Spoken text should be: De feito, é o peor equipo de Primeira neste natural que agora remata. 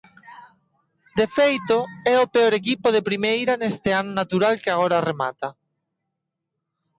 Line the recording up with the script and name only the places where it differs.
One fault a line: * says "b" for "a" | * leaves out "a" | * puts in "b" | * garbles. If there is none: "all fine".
* puts in "ano"